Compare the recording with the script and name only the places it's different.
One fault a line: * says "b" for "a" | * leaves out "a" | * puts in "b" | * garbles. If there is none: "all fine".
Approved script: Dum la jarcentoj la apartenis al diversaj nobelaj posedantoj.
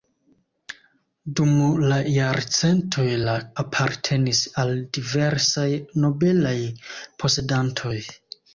all fine